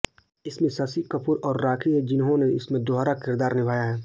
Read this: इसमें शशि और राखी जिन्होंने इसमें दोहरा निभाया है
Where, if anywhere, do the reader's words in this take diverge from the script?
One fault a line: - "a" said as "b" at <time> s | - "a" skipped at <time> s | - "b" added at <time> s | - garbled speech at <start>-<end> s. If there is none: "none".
- "कपूर" added at 1.1 s
- "हैं" added at 1.9 s
- "किरदार" added at 3.2 s